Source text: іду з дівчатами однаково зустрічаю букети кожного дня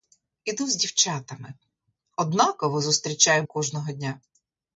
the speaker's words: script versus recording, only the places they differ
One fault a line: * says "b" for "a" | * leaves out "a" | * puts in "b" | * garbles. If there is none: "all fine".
* leaves out "букети"